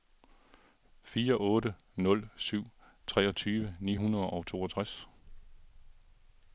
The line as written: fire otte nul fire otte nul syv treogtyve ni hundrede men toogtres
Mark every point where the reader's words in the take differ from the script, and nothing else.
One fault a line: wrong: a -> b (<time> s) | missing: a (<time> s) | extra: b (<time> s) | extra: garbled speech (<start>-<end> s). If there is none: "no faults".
missing: fire otte nul (2.3 s)
wrong: men -> og (4.3 s)